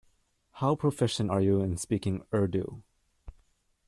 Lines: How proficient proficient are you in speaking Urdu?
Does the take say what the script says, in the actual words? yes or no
no